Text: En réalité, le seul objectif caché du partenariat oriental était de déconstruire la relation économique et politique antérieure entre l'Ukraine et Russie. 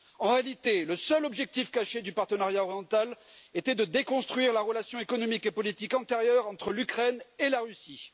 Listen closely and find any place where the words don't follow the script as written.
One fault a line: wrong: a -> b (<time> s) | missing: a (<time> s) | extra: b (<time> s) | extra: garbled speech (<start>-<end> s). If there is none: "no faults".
extra: la (7.5 s)